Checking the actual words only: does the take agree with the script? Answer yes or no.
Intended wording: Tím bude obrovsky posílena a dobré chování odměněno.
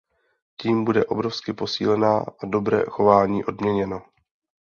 yes